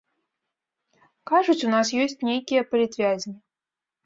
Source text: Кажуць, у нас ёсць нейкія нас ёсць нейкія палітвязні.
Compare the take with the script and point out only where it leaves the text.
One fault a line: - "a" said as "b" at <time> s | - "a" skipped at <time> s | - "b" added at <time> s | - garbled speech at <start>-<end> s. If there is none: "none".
- "нас ёсць нейкія" skipped at 2.6 s